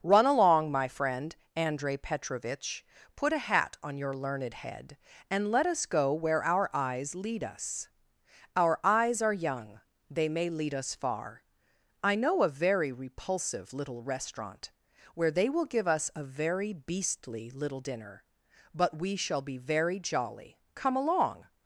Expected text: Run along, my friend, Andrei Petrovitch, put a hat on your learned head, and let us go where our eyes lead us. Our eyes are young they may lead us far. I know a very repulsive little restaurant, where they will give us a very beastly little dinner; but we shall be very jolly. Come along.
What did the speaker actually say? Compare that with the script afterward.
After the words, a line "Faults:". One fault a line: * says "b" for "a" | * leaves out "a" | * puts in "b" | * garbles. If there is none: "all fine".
Run along, my friend, Andrei Petrovitch, put a hat on your learned head, and let us go where our eyes lead us. Our eyes are young they may lead us far. I know a very repulsive little restaurant, where they will give us a very beastly little dinner; but we shall be very jolly. Come along.
Faults:
all fine